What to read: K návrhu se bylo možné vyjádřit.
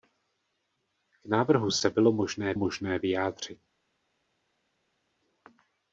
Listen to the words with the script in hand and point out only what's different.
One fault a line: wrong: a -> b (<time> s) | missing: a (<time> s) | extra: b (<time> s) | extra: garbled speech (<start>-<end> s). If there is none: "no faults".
extra: možné (2.5 s)